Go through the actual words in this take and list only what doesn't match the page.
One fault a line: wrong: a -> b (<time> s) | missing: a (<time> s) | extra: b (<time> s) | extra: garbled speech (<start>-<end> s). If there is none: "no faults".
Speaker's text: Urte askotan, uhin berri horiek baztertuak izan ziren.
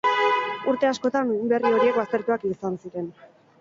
no faults